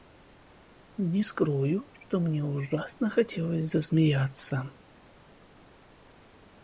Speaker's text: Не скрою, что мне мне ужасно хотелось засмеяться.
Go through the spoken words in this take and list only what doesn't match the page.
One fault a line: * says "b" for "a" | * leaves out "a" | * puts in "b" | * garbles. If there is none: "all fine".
* leaves out "мне"